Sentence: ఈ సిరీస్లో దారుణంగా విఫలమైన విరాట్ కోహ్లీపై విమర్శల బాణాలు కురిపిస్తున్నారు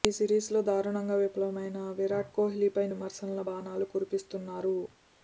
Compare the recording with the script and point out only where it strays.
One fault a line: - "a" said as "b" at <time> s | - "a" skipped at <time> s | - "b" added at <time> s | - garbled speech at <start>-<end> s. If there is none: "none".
none